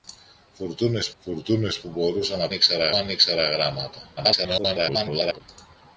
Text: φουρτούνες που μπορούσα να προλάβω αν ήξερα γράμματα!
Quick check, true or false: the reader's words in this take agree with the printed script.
false